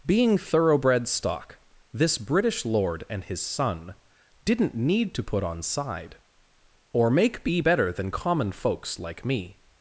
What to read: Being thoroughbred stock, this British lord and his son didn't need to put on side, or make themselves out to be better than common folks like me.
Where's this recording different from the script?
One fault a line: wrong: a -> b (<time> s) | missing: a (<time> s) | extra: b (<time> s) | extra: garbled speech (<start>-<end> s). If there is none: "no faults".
missing: themselves out to (7.4 s)